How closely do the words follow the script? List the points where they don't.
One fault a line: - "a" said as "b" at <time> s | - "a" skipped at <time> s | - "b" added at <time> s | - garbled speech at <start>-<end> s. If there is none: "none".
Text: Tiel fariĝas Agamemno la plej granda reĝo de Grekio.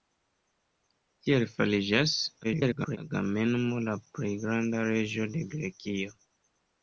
- garbled speech at 2.4-3.0 s